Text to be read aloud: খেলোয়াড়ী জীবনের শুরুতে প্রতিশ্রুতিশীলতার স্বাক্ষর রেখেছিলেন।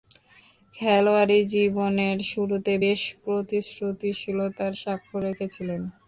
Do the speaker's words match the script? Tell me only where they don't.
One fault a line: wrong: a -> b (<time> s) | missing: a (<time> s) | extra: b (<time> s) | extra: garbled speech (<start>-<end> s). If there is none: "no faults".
extra: বেশ (2.8 s)